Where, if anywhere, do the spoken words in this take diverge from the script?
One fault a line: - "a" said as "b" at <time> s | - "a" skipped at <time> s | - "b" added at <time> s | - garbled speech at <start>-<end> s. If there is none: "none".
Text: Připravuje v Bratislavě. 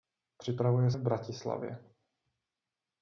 none